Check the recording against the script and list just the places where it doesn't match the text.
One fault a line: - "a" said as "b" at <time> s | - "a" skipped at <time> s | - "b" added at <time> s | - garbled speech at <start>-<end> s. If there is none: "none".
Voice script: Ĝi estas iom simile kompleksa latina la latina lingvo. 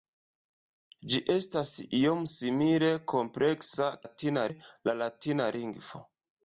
none